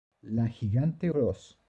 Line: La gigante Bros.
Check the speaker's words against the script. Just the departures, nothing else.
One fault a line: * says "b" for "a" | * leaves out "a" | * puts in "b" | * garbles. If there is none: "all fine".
all fine